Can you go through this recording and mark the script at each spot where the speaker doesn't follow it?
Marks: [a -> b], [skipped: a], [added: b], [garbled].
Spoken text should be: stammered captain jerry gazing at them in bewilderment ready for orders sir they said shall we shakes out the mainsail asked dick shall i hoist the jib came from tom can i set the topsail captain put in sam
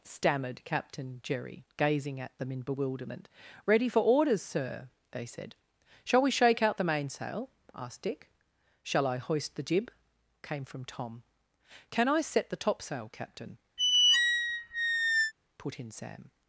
stammered captain jerry gazing at them in bewilderment ready for orders sir they said shall we [shakes -> shake] out the mainsail asked dick shall i hoist the jib came from tom can i set the topsail captain put in sam